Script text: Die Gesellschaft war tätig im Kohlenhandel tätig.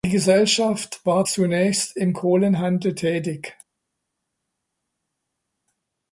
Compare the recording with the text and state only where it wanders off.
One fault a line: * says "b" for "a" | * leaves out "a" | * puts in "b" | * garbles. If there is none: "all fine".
* says "zunächst" for "tätig"